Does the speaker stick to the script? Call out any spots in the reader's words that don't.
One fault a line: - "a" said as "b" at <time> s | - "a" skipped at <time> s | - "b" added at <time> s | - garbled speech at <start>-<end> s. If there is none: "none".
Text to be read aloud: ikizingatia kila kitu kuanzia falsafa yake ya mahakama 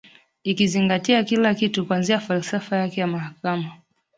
none